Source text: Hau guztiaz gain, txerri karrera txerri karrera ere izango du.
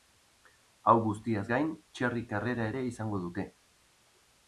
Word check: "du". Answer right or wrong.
wrong